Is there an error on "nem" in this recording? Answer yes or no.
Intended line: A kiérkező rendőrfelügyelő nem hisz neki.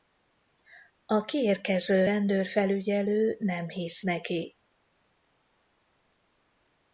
no